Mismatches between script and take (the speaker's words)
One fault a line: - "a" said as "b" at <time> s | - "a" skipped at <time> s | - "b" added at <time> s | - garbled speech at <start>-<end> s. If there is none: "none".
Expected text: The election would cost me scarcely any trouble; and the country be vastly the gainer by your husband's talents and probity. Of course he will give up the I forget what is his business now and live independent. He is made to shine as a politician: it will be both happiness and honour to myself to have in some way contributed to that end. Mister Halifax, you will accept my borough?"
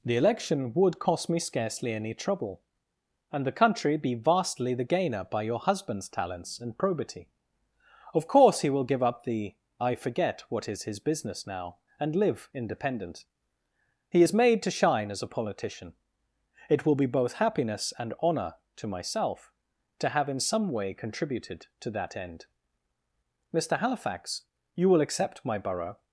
none